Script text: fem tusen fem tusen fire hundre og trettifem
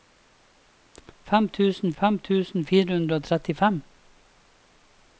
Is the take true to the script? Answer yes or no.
yes